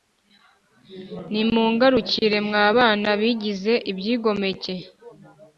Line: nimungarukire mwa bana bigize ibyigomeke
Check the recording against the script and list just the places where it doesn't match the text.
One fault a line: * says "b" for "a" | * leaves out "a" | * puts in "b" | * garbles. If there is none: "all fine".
all fine